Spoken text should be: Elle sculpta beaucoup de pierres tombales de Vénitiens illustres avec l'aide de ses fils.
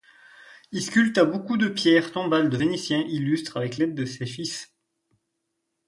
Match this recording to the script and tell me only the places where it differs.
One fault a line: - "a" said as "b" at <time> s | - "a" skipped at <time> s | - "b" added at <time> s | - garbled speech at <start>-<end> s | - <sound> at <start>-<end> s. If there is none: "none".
- "Elle" said as "Il" at 0.7 s